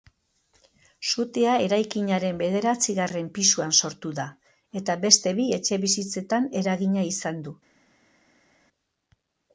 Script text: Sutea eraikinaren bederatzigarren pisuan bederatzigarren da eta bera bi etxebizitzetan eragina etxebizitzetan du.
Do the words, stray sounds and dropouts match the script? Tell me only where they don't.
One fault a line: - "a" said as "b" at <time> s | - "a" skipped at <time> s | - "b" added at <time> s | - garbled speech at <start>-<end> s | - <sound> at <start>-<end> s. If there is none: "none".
- "bederatzigarren" said as "sortu" at 3.8 s
- "bera" said as "beste" at 5.1 s
- "etxebizitzetan" said as "izan" at 7.1 s